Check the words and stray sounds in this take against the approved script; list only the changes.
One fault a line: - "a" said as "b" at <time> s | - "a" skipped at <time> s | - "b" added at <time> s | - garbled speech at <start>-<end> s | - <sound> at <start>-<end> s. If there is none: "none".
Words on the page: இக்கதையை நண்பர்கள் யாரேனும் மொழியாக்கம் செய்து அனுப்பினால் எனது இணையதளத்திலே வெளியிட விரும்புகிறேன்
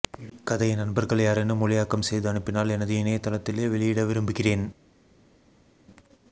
none